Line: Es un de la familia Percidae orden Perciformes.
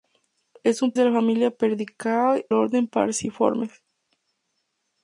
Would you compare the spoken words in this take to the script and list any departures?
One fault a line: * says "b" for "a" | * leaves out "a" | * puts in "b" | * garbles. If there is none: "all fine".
all fine